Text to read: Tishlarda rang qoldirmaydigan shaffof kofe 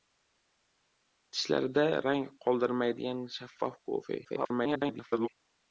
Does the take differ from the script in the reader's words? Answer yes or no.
yes